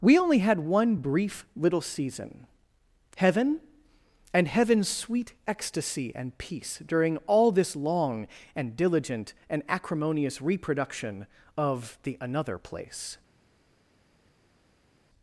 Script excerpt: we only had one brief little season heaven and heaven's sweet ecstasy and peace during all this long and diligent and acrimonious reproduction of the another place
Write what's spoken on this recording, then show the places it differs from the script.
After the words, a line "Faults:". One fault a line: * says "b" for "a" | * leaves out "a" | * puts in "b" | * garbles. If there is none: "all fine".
we only had one brief little season heaven and heaven's sweet ecstasy and peace during all this long and diligent and acrimonious reproduction of the another place
Faults:
all fine